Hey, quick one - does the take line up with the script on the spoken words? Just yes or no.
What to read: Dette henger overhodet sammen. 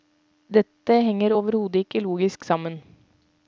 no